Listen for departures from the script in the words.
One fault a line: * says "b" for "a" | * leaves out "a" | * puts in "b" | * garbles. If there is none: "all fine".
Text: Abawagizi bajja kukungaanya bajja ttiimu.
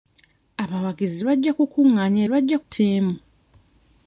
all fine